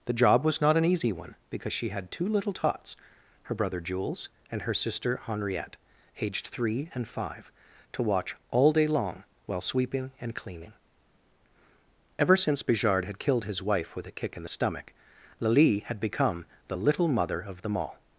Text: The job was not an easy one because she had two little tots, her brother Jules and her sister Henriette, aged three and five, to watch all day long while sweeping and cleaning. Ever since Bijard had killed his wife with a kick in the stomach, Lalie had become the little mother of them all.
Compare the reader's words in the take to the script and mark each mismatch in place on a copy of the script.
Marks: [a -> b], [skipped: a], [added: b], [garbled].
The job was not an easy one because she had two little tots, her brother Jules and her sister Henriette, aged three and five, to watch all day long while sweeping and cleaning. Ever since Bijard had killed his wife with a kick in the stomach, Lalie had become the little mother of them all.